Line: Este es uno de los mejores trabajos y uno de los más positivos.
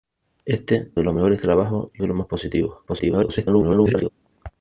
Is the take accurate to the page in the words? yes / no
no